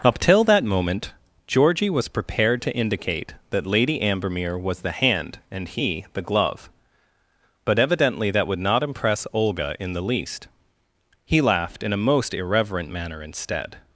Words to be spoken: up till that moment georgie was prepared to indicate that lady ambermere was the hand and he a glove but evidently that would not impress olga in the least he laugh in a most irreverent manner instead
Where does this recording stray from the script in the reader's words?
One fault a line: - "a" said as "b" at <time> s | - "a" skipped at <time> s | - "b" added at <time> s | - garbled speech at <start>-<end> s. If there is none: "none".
- "a" said as "the" at 6.1 s
- "laugh" said as "laughed" at 11.4 s